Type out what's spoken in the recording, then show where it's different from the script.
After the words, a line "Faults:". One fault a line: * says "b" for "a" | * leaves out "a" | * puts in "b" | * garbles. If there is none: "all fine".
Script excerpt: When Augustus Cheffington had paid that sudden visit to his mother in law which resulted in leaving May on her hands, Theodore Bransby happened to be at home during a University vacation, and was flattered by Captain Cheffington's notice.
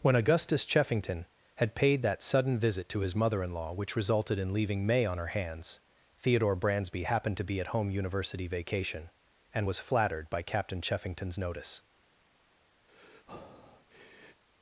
When Augustus Cheffington had paid that sudden visit to his mother in law which resulted in leaving May on her hands, Theodore Bransby happened to be at home University vacation, and was flattered by Captain Cheffington's notice.
Faults:
* leaves out "during a"